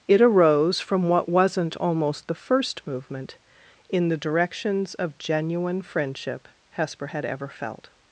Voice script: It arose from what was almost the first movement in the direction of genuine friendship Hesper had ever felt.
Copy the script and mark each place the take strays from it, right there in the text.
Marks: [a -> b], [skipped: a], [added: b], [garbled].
It arose from what [was -> wasn't] almost the first movement in the [direction -> directions] of genuine friendship Hesper had ever felt.